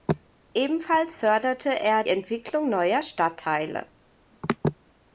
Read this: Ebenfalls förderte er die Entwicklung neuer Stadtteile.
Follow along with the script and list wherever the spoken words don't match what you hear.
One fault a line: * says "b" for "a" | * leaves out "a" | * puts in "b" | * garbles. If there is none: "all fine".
* leaves out "die"